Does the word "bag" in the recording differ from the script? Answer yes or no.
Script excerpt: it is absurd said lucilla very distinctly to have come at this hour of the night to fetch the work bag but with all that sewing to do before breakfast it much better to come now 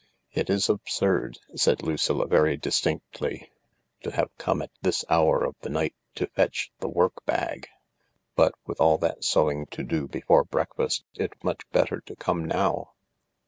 no